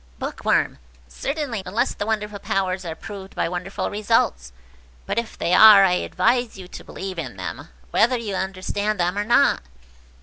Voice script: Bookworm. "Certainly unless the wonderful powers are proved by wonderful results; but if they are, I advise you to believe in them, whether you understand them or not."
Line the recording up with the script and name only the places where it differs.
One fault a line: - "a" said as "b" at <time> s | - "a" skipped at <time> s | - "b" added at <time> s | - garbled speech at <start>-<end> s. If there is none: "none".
none